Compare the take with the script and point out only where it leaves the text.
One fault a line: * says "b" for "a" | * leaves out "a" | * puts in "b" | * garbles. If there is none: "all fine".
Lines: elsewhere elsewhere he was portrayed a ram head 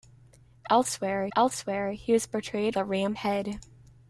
all fine